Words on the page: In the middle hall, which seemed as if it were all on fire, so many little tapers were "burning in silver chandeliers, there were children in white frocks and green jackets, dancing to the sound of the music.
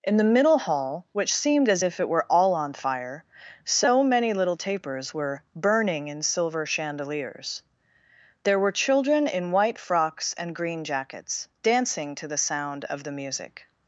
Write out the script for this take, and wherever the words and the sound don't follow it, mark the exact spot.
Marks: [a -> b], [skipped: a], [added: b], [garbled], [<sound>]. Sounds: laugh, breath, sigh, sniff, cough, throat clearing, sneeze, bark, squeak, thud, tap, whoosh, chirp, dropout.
In the middle hall, which seemed as if it were all on fire, so many little tapers were "burning in silver chandeliers, there were children in white frocks and green jackets, dancing to the sound of the music.